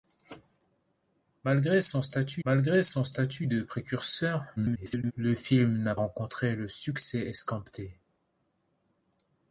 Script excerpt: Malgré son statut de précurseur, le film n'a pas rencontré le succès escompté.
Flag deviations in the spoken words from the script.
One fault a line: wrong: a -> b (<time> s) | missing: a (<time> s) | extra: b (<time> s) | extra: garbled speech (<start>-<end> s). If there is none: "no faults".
extra: malgré son statut (2.4 s)
extra: garbled speech (4.6-5.1 s)
missing: pas (5.9 s)